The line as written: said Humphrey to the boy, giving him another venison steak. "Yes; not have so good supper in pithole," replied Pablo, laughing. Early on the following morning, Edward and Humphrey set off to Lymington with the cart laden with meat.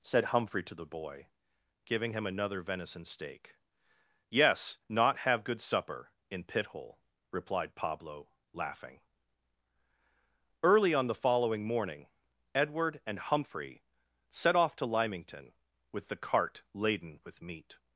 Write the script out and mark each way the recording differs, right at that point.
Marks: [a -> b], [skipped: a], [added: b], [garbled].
said Humphrey to the boy, giving him another venison steak. "Yes; not have [skipped: so] good supper in pithole," replied Pablo, laughing. Early on the following morning, Edward and Humphrey set off to Lymington with the cart laden with meat.